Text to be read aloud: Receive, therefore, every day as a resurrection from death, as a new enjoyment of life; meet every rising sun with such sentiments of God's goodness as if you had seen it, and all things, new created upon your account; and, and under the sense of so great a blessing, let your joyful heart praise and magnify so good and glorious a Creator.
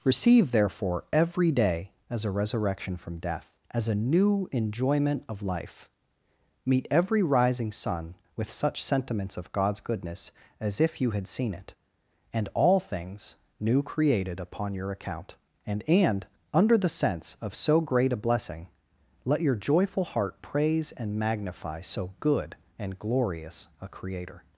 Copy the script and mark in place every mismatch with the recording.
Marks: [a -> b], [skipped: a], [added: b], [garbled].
Receive, therefore, every day as a resurrection from death, as a new enjoyment of life; meet every rising sun with such sentiments of God's goodness as if you had seen it, and all things, new created upon your account; and, and under the sense of so great a blessing, let your joyful heart praise and magnify so good and glorious a Creator.